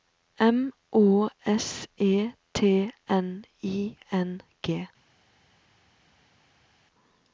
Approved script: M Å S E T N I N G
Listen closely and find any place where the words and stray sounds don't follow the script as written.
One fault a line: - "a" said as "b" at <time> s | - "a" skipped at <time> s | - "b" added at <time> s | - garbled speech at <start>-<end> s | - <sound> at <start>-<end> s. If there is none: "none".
none